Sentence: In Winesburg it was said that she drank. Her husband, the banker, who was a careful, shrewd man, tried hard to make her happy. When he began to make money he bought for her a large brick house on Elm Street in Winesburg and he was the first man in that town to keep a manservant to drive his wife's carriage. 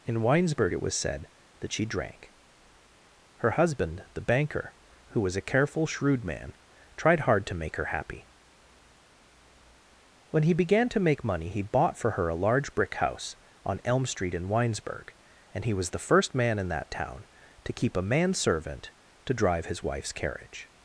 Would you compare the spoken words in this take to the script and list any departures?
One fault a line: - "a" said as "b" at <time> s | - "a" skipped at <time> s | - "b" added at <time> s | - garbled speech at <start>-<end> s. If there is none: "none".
none